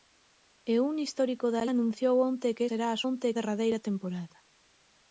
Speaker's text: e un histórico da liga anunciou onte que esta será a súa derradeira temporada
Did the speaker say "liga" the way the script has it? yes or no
no